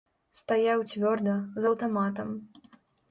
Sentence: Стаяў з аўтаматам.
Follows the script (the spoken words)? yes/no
no